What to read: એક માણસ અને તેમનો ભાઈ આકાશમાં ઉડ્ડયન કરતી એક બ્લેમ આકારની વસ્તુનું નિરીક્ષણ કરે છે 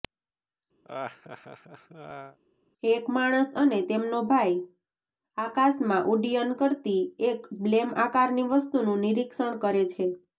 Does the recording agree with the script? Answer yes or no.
yes